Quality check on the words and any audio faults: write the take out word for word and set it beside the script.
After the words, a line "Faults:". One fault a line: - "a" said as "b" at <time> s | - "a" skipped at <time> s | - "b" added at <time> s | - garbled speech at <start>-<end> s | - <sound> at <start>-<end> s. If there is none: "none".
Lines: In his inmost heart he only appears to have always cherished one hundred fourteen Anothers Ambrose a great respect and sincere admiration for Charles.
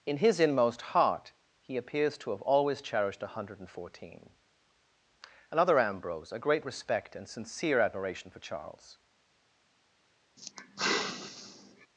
In his inmost heart he appears to have always cherished one hundred fourteen Another Ambrose a great respect and sincere admiration for Charles.
Faults:
- "only" skipped at 1.8 s
- "Anothers" said as "Another" at 5.5 s
- sigh at 10.4-11.9 s